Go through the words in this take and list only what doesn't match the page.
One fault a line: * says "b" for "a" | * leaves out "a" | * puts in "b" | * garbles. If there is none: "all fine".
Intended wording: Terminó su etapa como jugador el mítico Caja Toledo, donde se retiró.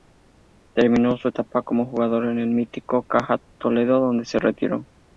* puts in "en"